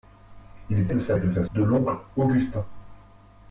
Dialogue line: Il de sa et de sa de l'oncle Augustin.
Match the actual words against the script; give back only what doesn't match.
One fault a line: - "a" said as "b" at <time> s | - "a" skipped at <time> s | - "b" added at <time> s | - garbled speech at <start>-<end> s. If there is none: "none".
none